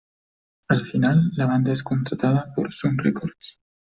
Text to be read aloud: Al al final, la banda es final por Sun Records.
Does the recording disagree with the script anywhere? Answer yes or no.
yes